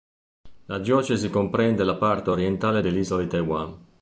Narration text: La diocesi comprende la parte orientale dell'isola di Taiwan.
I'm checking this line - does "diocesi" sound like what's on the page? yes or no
yes